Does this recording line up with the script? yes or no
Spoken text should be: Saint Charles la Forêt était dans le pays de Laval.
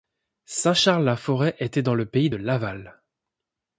yes